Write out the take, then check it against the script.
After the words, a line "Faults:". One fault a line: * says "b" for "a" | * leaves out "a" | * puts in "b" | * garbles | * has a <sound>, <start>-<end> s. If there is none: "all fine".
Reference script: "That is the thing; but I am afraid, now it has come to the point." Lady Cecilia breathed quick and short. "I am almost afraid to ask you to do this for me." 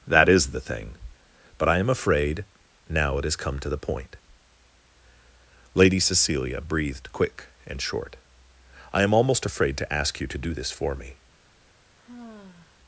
"That is the thing; but I am afraid, now it has come to the point." Lady Cecilia breathed quick and short. "I am almost afraid to ask you to do this for me."
Faults:
* has a sigh, 12.0-12.8 s